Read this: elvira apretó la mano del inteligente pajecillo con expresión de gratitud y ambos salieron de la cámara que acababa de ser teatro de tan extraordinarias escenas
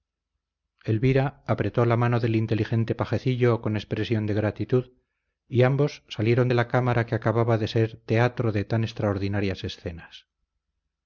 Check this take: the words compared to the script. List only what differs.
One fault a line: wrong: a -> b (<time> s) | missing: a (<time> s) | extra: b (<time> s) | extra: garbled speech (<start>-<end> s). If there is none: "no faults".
no faults